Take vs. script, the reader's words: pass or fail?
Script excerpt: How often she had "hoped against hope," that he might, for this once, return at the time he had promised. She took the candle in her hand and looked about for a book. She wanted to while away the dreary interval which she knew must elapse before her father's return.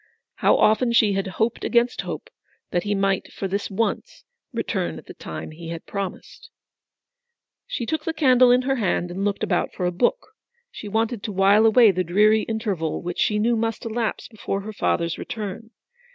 pass